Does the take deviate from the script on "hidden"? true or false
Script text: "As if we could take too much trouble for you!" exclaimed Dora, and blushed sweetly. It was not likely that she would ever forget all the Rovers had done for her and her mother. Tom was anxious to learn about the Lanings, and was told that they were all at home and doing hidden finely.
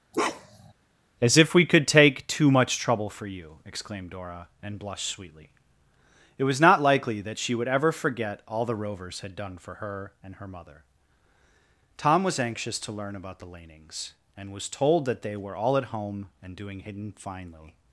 false